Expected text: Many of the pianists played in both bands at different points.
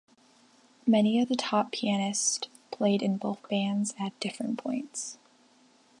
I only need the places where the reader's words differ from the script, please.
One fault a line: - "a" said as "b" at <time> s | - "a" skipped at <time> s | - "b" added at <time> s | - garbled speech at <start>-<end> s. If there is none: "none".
- "top" added at 1.3 s